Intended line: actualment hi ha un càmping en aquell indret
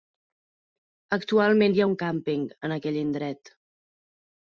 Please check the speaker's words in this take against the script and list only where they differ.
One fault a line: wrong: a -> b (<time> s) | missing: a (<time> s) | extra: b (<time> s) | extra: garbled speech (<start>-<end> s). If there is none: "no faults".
no faults